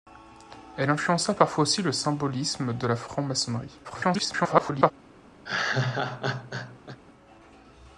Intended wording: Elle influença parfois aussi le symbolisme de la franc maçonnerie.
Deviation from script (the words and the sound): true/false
true